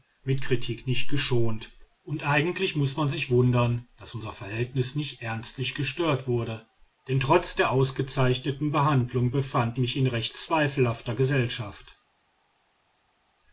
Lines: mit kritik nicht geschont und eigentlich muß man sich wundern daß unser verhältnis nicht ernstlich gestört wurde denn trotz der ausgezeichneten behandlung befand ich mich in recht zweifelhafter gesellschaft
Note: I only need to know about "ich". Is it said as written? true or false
false